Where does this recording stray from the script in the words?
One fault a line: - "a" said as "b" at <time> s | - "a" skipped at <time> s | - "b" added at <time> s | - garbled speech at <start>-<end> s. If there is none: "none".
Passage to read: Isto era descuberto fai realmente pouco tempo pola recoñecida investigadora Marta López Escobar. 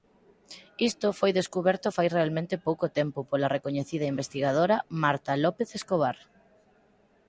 - "era" said as "foi" at 1.2 s